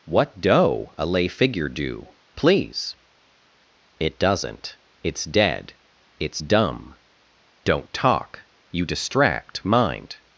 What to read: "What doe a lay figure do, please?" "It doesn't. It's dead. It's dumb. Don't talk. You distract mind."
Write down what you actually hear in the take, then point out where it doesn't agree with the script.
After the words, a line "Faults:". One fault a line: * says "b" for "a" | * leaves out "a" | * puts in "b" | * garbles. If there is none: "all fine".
"What doe a lay figure do, please?" "It doesn't. It's dead. It's dumb. Don't talk. You distract mind."
Faults:
all fine